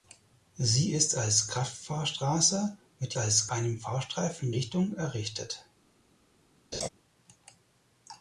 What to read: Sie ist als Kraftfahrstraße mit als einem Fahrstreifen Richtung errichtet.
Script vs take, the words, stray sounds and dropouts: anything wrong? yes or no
yes